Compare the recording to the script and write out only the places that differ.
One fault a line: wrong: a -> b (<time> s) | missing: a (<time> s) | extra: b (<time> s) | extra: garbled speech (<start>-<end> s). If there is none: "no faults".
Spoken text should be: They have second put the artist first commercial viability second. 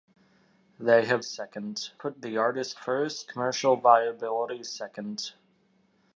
no faults